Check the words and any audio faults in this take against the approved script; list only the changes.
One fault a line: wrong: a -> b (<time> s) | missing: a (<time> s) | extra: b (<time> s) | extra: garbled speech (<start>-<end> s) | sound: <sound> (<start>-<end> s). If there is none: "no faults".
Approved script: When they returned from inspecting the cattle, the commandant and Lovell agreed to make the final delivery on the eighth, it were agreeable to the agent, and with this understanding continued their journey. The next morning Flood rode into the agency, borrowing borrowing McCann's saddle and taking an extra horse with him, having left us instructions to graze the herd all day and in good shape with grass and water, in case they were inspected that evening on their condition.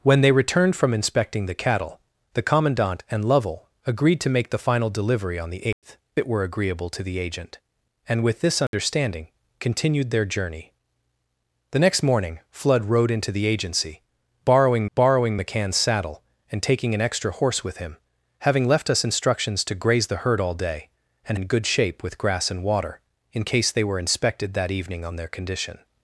sound: dropout (5.7-5.8 s)
sound: dropout (8.7-8.7 s)